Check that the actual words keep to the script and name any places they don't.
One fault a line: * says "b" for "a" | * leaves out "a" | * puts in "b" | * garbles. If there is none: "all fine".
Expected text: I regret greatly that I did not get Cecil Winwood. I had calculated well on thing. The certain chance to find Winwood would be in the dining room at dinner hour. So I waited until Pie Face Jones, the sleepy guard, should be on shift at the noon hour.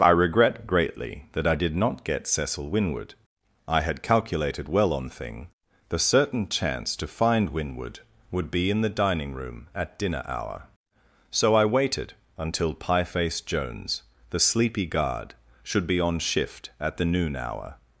all fine